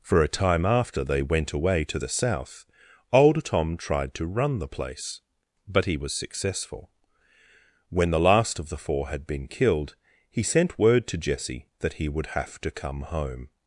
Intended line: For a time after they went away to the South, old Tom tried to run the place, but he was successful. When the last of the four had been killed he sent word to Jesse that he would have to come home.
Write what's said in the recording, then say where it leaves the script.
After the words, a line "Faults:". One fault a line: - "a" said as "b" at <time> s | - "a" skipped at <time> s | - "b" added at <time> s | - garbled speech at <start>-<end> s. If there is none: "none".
For a time after they went away to the South, old Tom tried to run the place, but he was successful. When the last of the four had been killed he sent word to Jesse that he would have to come home.
Faults:
none